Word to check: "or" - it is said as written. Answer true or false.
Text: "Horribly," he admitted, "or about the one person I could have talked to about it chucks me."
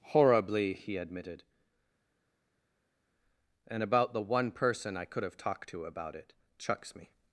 false